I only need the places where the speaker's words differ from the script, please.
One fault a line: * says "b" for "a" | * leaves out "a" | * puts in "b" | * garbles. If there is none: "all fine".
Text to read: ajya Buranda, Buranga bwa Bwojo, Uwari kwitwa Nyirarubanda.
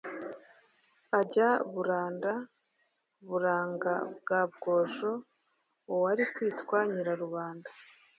all fine